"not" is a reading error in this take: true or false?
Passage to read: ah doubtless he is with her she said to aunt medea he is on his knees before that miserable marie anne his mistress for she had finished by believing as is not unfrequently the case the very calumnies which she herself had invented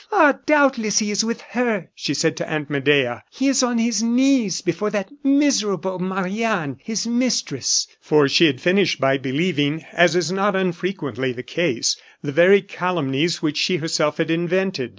false